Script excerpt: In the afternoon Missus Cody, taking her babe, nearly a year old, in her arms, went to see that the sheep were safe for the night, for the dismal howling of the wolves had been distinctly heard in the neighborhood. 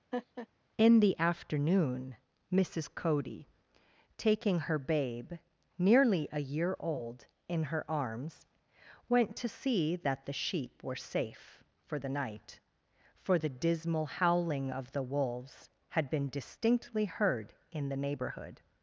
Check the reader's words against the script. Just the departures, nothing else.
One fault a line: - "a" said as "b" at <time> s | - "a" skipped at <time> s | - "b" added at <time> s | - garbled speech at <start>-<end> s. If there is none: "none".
none